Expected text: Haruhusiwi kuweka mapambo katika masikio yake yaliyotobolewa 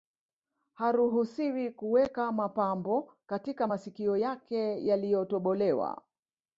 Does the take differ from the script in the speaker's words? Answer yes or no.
no